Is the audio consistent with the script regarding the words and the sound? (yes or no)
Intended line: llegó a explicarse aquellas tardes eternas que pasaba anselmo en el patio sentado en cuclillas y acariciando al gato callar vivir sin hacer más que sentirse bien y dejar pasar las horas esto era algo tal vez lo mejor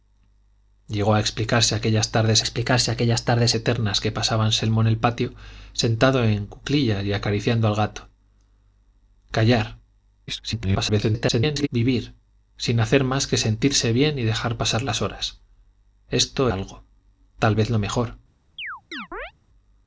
no